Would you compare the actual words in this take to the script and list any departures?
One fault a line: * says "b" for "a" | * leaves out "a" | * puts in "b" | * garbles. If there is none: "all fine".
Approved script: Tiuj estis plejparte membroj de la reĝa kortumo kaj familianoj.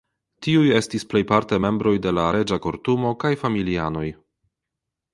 all fine